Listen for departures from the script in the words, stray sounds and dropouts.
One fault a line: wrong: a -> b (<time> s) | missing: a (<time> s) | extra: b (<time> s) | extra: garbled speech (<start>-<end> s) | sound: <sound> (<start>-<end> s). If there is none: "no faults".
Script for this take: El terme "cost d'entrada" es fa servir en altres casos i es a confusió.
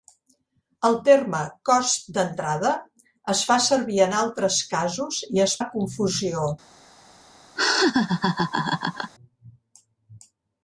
sound: laugh (7.6-9.1 s)